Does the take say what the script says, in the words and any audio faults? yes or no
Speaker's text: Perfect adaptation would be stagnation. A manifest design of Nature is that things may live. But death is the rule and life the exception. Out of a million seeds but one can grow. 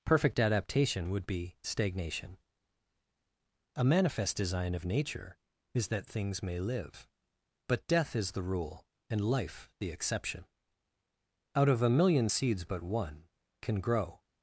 yes